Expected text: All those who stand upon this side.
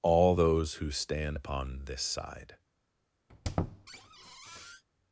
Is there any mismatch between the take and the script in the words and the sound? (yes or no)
yes